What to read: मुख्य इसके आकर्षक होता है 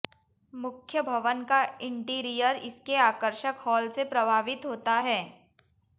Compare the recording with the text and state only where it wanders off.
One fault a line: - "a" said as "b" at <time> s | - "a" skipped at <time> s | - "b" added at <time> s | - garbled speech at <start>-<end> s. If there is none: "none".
- "भवन का इंटीरियर" added at 1.0 s
- "हॉल से प्रभावित" added at 3.6 s